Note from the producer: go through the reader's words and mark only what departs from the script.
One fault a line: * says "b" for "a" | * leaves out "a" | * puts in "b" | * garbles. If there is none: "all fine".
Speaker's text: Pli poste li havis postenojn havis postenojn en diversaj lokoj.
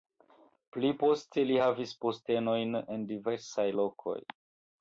* leaves out "havis postenojn"